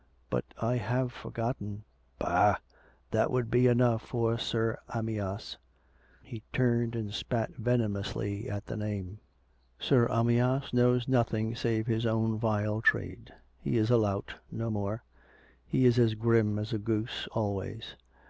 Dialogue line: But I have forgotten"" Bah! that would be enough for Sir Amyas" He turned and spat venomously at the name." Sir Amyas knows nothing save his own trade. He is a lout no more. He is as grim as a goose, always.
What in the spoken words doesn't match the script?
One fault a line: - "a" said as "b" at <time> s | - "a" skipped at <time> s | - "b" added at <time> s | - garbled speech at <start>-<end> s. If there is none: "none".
- "vile" added at 12.4 s